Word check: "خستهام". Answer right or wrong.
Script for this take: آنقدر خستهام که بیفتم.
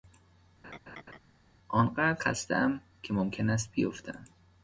right